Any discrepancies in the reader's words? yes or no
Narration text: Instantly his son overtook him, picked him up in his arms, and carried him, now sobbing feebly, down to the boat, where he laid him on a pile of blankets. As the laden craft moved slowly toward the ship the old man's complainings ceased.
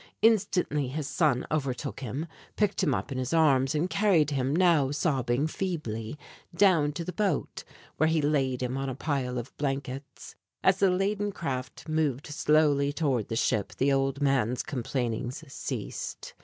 no